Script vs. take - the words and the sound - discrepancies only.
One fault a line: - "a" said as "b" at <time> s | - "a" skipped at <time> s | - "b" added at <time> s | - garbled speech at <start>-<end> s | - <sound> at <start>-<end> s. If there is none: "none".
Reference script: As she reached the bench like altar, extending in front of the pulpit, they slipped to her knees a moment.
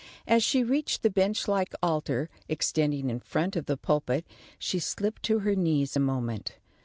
- "they" said as "she" at 4.6 s